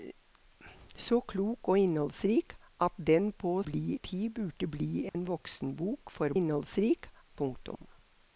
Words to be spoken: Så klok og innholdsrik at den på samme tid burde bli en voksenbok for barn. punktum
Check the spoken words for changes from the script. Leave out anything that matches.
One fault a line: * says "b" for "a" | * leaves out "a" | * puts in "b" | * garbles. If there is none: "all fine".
* says "bli" for "samme"
* says "innholdsrik" for "barn"